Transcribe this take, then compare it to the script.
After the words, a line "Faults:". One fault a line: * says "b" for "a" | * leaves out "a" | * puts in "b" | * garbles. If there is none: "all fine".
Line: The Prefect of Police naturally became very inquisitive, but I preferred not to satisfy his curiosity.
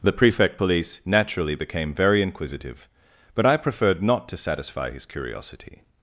The Prefect Police naturally became very inquisitive, but I preferred not to satisfy his curiosity.
Faults:
* leaves out "of"